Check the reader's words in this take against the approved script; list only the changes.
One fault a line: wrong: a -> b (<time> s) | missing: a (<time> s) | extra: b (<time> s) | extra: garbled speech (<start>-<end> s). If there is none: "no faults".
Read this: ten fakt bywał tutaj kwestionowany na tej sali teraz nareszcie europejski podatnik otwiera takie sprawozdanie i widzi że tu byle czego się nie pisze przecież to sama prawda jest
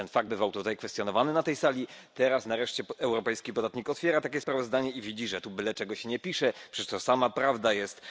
no faults